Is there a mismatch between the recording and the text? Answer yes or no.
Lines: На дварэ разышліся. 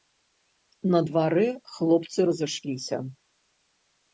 yes